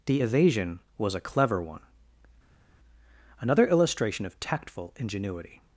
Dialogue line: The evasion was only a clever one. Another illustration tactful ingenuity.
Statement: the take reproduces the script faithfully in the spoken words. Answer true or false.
false